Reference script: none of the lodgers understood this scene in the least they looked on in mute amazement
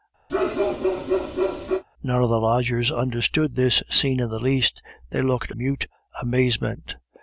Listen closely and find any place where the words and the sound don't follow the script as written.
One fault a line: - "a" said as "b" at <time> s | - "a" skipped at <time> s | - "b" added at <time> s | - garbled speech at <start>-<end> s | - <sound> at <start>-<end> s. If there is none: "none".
- bark at 0.3-1.8 s
- "on in" skipped at 5.5 s